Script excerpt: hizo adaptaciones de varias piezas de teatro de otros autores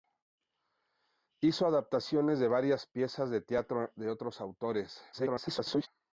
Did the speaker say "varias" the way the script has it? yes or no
yes